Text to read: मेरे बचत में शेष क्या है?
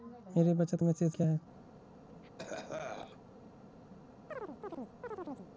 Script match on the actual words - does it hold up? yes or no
yes